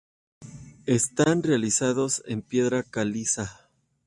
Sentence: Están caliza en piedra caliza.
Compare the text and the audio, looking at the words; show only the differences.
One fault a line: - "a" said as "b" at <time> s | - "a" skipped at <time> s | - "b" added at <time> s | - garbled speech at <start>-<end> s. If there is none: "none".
- "caliza" said as "realizados" at 1.4 s